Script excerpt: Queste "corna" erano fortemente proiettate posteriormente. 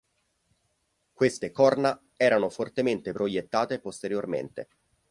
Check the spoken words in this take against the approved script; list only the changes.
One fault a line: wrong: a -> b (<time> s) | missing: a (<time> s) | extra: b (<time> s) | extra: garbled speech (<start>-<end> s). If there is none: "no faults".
no faults